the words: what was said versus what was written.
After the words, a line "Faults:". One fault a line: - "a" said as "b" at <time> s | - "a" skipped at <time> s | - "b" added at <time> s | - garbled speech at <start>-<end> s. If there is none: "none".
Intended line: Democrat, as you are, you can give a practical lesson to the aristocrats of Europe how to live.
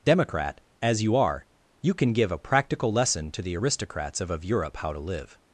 Democrat, as you are, you can give a practical lesson to the aristocrats of of Europe how to live.
Faults:
- "of" added at 4.3 s